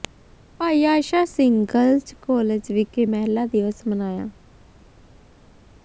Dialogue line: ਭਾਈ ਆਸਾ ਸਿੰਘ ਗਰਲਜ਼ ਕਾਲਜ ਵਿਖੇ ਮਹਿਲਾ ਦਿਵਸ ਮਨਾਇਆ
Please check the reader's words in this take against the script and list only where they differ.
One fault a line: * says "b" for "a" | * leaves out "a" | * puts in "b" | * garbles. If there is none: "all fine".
all fine